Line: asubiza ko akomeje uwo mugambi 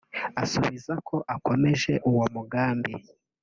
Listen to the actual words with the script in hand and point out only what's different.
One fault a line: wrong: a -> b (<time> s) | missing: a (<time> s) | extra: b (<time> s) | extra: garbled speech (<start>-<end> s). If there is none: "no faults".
no faults